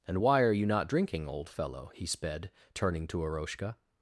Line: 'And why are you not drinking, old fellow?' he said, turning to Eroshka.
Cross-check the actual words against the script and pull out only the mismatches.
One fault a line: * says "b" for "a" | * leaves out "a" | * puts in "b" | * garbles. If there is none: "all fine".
* says "sped" for "said"